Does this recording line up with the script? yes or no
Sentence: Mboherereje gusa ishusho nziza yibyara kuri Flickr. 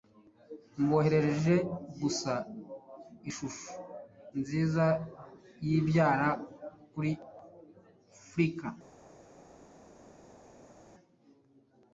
yes